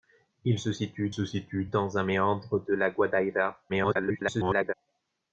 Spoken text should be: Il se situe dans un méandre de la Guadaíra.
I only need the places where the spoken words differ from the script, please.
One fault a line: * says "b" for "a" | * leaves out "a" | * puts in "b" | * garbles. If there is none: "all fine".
* puts in "se situe"
* garbles